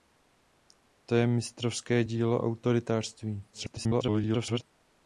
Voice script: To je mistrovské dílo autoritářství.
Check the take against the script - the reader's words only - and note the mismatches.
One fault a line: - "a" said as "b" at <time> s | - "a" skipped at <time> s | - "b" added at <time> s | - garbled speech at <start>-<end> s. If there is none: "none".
- garbled speech at 3.5-4.6 s